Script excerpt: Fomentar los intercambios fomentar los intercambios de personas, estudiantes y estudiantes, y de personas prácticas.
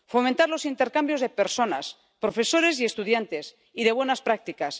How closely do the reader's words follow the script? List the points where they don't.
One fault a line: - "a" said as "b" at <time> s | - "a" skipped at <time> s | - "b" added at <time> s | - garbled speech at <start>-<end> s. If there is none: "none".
- "fomentar los intercambios" skipped at 1.2 s
- "estudiantes" said as "profesores" at 2.2 s
- "personas" said as "buenas" at 3.9 s